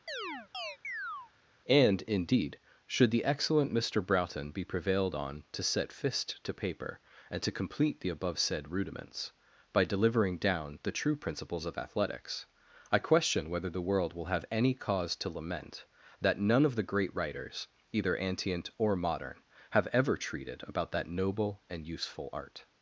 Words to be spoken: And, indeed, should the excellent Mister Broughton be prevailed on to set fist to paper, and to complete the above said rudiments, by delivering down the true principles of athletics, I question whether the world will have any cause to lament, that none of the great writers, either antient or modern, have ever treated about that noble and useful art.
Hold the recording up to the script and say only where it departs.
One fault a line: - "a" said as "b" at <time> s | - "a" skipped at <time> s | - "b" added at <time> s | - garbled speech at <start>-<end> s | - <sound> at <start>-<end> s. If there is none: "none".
- chirp at 0.1-1.3 s